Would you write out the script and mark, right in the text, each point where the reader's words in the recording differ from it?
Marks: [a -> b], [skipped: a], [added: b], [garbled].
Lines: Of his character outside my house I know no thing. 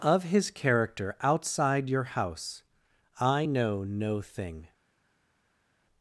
Of his character outside [my -> your] house I know no thing.